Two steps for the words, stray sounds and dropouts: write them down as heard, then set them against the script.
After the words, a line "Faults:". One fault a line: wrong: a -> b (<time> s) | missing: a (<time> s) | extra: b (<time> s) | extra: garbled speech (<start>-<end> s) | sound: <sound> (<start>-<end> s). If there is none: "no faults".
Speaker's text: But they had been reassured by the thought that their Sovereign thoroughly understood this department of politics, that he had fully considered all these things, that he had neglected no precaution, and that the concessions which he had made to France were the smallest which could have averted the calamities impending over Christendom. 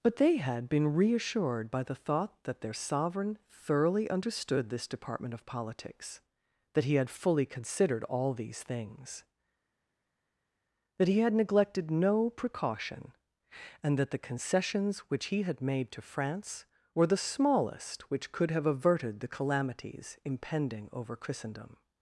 But they had been reassured by the thought that their Sovereign thoroughly understood this department of politics, that he had fully considered all these things, that he had neglected no precaution, and that the concessions which he had made to France were the smallest which could have averted the calamities impending over Christendom.
Faults:
no faults